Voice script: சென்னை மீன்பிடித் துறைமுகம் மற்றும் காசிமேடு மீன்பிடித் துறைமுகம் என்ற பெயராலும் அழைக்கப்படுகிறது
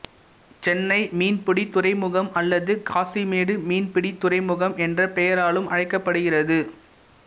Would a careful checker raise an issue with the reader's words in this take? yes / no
yes